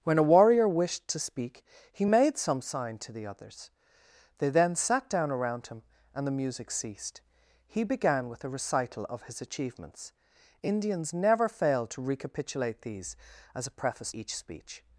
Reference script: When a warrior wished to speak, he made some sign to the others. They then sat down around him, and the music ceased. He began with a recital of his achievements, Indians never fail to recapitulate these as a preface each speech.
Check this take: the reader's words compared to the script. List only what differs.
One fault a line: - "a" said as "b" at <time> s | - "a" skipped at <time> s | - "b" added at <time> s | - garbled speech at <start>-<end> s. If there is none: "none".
none